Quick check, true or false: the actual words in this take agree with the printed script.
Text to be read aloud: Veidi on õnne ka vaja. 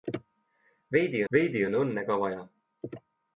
false